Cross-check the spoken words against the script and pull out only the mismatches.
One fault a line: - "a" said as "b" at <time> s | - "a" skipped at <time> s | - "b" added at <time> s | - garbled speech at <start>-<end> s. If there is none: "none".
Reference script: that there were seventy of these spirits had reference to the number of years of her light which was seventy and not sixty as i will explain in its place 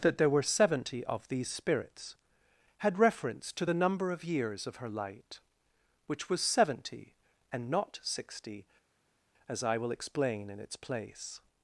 none